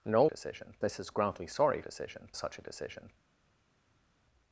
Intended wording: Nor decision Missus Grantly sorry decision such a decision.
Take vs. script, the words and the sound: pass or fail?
pass